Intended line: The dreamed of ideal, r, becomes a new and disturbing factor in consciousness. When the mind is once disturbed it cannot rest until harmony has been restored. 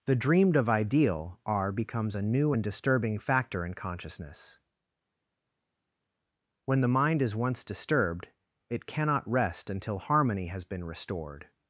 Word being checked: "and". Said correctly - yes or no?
yes